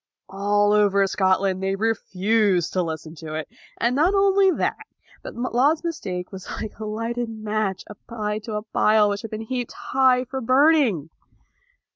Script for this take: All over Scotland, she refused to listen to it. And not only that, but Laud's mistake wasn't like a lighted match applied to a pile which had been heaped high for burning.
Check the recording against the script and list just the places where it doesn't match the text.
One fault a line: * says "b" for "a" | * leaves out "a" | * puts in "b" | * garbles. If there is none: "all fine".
* says "they" for "she"
* says "was" for "wasn't"